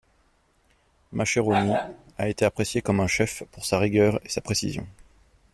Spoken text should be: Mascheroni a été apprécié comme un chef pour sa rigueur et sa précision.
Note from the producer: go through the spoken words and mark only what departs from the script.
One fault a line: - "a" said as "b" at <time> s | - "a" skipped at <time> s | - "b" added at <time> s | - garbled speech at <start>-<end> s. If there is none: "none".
none